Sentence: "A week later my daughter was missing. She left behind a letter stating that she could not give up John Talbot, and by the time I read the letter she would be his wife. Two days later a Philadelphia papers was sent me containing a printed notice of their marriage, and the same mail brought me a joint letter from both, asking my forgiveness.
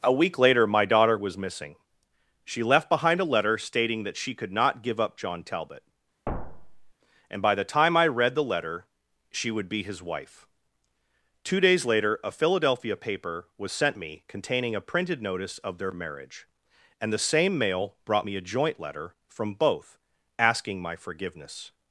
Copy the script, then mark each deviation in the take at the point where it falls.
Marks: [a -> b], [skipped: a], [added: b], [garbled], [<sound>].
"A week later my daughter was missing. She left behind a letter stating that she could not give up John Talbot, [thud] and by the time I read the letter she would be his wife. Two days later a Philadelphia [papers -> paper] was sent me containing a printed notice of their marriage, and the same mail brought me a joint letter from both, asking my forgiveness.